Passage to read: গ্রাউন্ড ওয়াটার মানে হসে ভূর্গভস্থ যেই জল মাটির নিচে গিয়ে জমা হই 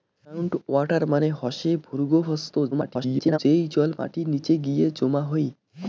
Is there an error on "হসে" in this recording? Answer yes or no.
no